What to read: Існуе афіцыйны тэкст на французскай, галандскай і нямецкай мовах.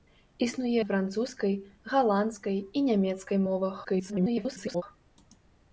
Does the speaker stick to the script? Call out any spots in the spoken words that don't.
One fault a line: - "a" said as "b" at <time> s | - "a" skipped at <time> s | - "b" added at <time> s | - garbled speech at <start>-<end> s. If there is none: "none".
- "афіцыйны тэкст" skipped at 0.8 s
- garbled speech at 3.8-4.8 s